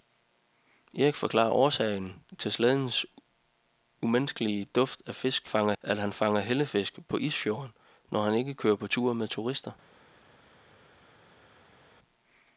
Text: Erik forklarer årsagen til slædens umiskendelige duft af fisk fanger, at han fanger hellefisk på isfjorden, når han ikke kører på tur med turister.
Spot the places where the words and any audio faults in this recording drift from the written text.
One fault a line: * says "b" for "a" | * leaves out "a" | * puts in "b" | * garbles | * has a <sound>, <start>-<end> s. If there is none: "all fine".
all fine